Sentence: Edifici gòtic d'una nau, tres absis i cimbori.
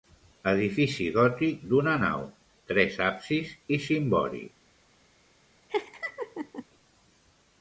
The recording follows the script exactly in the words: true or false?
true